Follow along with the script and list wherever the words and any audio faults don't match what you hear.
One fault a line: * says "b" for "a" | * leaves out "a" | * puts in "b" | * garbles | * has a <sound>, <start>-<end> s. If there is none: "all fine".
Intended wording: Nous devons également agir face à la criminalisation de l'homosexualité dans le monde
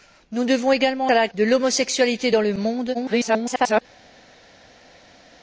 * leaves out "agir face"
* leaves out "criminalisation"
* garbles